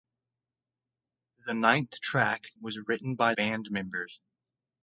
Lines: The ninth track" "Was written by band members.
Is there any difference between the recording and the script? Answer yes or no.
no